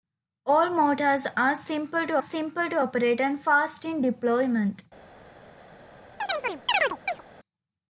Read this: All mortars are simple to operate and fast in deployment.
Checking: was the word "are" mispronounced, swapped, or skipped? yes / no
no